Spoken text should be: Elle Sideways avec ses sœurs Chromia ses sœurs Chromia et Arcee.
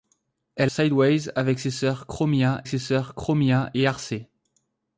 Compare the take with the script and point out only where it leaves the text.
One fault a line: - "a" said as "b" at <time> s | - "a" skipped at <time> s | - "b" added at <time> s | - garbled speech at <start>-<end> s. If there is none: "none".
none